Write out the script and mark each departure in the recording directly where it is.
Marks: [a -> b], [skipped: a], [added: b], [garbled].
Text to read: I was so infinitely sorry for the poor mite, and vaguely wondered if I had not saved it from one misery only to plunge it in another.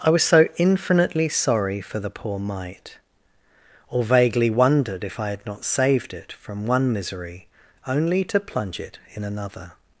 I was so infinitely sorry for the poor mite, [and -> or] vaguely wondered if I had not saved it from one misery only to plunge it in another.